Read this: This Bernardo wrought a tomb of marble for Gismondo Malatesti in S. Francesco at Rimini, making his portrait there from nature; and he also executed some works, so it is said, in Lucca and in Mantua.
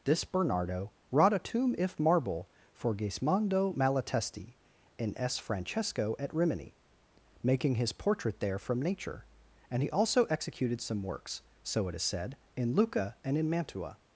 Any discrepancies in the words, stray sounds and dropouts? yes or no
yes